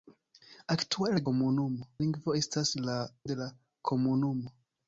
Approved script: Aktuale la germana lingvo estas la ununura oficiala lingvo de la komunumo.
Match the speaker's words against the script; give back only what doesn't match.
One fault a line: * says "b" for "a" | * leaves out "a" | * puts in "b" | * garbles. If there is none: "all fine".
* says "komunumo" for "germana"
* leaves out "ununura oficiala lingvo"